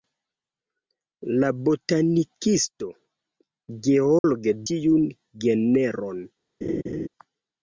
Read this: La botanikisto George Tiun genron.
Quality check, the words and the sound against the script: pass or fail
fail